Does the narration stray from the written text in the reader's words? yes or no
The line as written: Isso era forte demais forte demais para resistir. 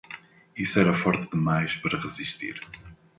yes